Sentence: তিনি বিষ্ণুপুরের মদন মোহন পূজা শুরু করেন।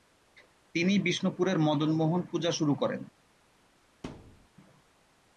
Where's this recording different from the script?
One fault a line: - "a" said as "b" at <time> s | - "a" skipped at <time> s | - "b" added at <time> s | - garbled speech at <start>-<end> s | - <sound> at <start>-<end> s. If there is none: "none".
- thud at 4.0-4.5 s